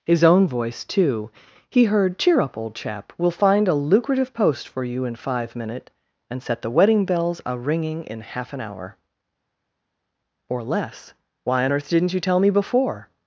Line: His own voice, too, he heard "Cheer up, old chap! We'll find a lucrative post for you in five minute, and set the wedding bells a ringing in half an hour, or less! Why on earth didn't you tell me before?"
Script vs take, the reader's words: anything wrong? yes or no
no